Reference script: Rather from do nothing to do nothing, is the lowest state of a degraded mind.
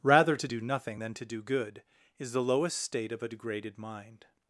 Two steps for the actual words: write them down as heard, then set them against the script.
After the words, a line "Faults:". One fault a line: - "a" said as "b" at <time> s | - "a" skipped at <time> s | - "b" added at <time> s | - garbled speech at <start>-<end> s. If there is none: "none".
Rather to do nothing than to do good, is the lowest state of a degraded mind.
Faults:
- "from" said as "to" at 0.3 s
- "than" added at 1.0 s
- "nothing" said as "good" at 1.4 s